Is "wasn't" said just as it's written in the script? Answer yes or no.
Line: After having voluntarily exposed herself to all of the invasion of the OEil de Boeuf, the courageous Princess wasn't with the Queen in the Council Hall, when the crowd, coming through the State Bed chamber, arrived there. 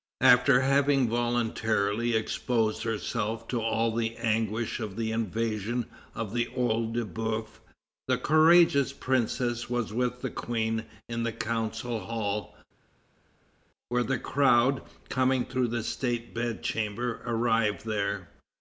no